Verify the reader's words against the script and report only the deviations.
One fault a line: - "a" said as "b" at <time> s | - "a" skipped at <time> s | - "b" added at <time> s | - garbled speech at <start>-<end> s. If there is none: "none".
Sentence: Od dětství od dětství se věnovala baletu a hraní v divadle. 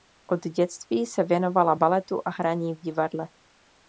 - "od dětství" skipped at 1.1 s